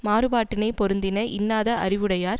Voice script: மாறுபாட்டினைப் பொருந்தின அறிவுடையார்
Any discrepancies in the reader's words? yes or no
yes